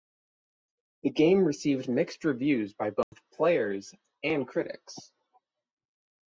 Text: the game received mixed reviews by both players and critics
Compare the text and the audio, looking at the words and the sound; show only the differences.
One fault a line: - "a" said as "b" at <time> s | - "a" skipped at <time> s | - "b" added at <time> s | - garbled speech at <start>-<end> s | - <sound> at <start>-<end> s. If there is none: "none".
- dropout at 3.0-3.1 s